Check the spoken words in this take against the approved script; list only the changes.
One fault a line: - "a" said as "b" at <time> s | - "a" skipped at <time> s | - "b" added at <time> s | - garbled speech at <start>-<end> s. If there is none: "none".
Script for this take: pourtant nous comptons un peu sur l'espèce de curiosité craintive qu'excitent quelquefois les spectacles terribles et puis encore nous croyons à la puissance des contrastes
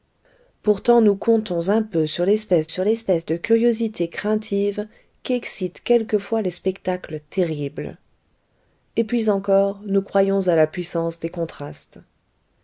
- "sur l'espèce" added at 2.7 s